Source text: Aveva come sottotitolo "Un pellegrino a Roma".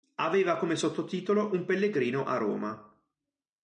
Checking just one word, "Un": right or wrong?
right